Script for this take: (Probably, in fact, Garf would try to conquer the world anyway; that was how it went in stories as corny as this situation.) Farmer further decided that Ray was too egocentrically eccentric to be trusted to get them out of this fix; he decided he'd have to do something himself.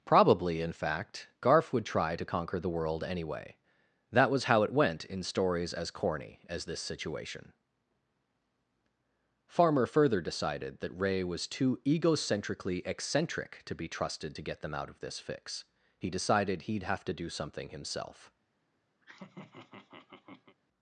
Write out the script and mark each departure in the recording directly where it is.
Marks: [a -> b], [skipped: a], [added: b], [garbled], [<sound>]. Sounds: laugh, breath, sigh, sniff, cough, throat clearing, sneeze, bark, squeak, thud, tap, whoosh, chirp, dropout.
(Probably, in fact, Garf would try to conquer the world anyway; that was how it went in stories as corny as this situation.) Farmer further decided that Ray was too egocentrically eccentric to be trusted to get them out of this fix; he decided he'd have to do something himself. [laugh]